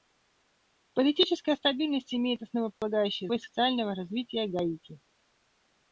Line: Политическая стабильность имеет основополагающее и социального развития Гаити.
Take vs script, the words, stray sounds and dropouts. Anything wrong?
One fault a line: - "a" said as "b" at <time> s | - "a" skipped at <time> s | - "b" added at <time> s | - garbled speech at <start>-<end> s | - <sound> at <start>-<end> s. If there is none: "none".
- dropout at 2.7-2.8 s